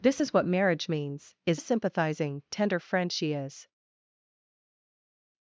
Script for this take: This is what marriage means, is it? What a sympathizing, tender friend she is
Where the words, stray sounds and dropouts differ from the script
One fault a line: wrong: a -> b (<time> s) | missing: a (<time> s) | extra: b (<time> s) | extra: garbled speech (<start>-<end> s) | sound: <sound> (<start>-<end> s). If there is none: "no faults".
missing: it What (1.6 s)